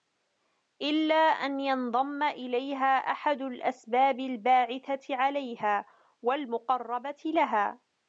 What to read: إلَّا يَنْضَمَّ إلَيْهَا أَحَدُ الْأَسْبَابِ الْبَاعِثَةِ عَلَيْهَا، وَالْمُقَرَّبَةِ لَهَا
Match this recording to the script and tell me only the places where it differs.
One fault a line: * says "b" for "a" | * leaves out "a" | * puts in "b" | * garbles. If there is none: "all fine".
* puts in "أَنْ"